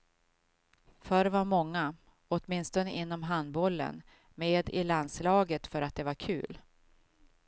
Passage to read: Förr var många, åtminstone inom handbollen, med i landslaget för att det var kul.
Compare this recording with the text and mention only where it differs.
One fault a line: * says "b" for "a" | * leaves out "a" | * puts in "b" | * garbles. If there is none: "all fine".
all fine